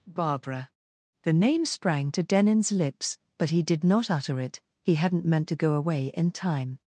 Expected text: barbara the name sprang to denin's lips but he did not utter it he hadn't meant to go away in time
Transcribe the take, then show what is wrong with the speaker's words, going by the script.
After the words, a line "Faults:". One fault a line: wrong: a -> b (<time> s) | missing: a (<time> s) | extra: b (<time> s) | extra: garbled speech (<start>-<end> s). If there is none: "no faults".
barbara the name sprang to denin's lips but he did not utter it he hadn't meant to go away in time
Faults:
no faults